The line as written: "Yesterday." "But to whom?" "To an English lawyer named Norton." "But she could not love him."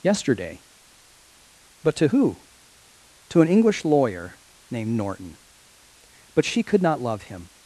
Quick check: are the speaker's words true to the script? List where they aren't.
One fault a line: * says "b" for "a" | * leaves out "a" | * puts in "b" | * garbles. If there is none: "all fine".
* says "who" for "whom"